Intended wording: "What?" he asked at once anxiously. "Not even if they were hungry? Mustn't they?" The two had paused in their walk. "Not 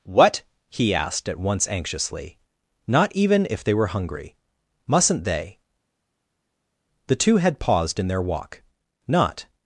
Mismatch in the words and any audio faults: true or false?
false